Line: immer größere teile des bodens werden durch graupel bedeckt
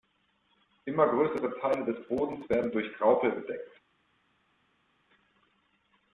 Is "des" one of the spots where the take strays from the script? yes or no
no